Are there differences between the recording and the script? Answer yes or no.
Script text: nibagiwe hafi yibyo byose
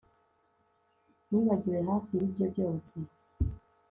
no